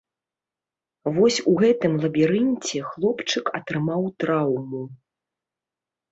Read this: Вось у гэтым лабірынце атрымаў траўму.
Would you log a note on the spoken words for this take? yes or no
yes